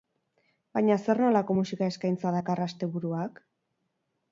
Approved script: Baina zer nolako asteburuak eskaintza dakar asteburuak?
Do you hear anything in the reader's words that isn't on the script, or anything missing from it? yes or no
yes